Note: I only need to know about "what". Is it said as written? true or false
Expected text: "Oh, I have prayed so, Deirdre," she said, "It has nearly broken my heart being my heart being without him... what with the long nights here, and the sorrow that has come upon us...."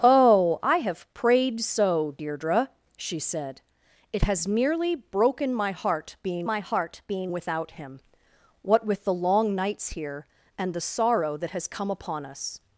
true